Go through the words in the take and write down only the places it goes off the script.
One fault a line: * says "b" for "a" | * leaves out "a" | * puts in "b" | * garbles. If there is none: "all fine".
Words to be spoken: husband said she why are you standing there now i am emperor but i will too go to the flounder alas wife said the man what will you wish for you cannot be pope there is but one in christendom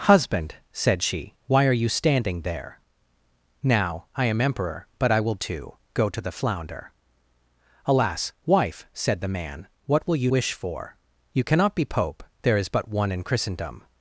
all fine